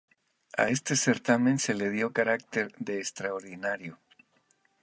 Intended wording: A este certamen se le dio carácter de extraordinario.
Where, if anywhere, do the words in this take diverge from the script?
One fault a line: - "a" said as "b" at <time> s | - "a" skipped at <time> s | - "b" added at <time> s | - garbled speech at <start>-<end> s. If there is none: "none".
none